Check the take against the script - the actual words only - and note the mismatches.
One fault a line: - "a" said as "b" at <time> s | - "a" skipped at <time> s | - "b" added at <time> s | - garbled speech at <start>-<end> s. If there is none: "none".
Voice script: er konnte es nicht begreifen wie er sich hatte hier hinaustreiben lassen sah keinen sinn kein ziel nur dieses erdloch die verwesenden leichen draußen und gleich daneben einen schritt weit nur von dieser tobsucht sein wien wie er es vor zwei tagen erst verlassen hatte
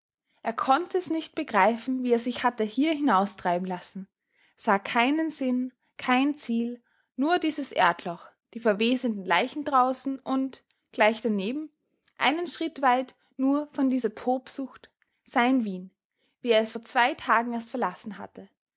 none